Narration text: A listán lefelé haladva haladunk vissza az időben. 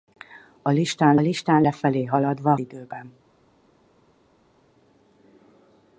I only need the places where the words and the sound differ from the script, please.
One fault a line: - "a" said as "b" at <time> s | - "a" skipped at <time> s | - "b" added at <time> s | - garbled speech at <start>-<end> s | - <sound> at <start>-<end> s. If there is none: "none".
- "listán" added at 1.2 s
- "haladunk vissza az" skipped at 2.5 s